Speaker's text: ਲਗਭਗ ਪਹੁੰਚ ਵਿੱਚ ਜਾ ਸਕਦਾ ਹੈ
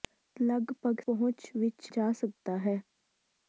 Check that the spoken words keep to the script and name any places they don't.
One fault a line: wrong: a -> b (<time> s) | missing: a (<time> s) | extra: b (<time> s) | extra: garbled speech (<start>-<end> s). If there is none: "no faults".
no faults